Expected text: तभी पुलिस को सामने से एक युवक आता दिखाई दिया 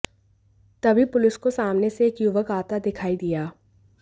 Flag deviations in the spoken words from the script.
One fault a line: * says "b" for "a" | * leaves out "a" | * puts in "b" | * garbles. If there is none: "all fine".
all fine